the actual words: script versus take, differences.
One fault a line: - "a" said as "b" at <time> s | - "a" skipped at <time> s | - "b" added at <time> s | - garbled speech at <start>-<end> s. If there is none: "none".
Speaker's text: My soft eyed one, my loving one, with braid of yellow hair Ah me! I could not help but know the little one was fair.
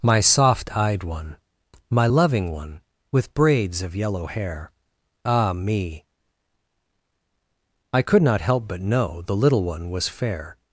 - "braid" said as "braids" at 3.3 s